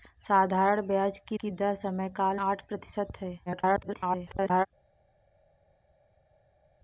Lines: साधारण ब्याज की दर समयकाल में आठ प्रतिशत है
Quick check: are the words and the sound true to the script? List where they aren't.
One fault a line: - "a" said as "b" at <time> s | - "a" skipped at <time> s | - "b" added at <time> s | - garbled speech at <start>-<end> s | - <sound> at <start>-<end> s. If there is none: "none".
- "की" added at 1.4 s
- "में" skipped at 2.4 s
- garbled speech at 3.5-4.7 s